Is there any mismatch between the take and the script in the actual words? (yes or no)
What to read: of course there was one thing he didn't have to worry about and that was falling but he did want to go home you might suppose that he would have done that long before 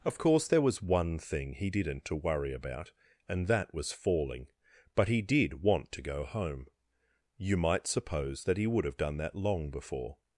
yes